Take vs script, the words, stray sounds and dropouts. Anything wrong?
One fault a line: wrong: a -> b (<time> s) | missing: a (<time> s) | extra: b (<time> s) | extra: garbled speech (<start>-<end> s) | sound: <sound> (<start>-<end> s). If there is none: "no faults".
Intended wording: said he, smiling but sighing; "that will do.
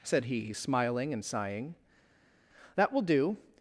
wrong: but -> and (1.1 s)